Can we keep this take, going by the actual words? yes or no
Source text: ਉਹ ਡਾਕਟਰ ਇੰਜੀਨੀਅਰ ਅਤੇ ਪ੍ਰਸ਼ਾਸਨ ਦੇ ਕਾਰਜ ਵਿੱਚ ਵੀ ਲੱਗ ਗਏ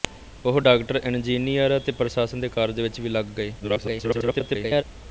no